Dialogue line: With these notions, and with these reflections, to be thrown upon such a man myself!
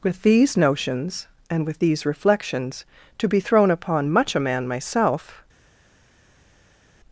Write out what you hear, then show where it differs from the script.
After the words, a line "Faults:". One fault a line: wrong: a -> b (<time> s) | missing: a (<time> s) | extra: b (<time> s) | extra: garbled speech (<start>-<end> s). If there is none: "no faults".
With these notions, and with these reflections, to be thrown upon much a man myself!
Faults:
wrong: such -> much (4.1 s)